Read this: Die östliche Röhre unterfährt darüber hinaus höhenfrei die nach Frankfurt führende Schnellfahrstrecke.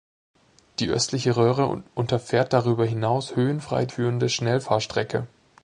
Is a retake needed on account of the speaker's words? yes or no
yes